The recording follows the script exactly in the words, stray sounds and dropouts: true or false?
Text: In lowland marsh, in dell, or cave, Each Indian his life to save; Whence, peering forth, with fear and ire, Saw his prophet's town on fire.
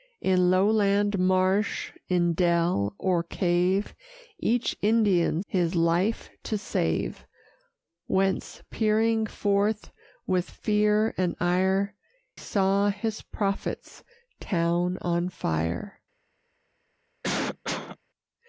false